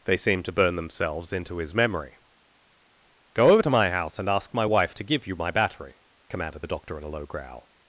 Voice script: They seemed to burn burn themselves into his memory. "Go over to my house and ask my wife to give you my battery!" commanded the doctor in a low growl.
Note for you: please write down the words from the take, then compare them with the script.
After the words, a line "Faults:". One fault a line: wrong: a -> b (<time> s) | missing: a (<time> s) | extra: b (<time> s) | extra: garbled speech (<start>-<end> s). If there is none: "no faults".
They seemed to burn themselves into his memory. "Go over to my house and ask my wife to give you my battery!" commanded the doctor in a low growl.
Faults:
missing: burn (0.8 s)